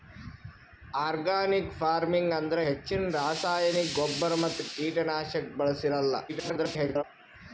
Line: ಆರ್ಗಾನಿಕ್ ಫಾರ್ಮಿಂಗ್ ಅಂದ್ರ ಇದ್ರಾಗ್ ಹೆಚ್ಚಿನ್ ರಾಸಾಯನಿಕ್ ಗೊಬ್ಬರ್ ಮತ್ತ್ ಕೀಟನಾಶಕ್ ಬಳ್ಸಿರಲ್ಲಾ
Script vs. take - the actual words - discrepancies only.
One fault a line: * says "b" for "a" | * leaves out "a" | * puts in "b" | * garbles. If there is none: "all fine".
* leaves out "ಇದ್ರಾಗ್"
* garbles